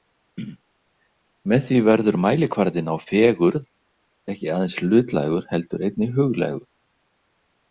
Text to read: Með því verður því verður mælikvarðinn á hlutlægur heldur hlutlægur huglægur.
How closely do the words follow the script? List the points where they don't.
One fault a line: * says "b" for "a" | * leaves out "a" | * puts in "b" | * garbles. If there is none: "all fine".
* says "mælikvarðinn á fegurð ekki aðeins" for "því verður mælikvarðinn á"
* says "einnig" for "hlutlægur"